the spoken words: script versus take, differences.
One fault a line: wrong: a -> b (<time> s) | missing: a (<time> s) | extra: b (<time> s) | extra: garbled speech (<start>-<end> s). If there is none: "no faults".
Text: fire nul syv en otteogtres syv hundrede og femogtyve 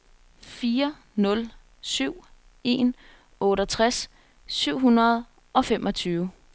no faults